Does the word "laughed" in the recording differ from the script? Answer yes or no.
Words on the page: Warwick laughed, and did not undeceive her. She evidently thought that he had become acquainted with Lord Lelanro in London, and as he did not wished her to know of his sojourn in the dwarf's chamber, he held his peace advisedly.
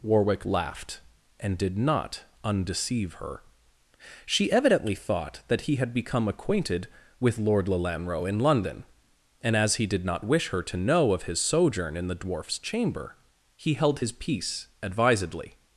no